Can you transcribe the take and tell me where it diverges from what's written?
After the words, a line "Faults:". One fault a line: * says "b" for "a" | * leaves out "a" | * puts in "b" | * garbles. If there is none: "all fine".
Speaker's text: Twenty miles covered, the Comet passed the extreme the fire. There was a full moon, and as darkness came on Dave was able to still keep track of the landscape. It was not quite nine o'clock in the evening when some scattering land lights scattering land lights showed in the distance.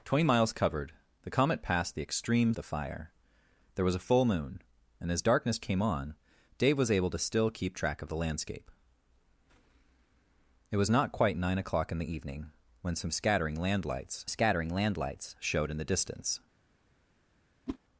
Twenty miles covered, the Comet passed the extreme the fire. There was a full moon, and as darkness came on Dave was able to still keep track of the landscape. It was not quite nine o'clock in the evening when some scattering land lights scattering land lights showed in the distance.
Faults:
all fine